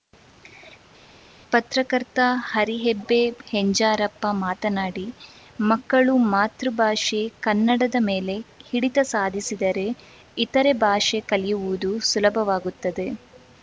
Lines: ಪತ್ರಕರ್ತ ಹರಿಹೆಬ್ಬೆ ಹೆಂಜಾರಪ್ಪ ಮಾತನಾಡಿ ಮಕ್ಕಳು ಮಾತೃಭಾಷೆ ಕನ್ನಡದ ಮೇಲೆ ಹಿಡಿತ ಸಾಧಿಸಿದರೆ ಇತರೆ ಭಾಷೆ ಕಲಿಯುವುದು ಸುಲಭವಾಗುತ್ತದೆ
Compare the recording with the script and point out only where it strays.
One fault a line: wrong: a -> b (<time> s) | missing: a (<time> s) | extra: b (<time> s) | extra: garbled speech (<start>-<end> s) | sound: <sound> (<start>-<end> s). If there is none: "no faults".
no faults